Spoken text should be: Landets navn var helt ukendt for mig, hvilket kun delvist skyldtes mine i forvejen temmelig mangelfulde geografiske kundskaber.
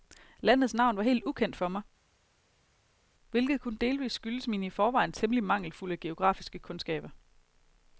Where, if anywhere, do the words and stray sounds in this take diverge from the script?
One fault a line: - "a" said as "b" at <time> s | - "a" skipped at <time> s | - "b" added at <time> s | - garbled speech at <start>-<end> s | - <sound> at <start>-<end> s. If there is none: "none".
none